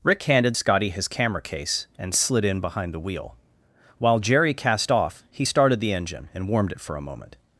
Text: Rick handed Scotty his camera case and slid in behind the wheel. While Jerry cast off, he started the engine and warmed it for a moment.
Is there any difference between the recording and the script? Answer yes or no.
no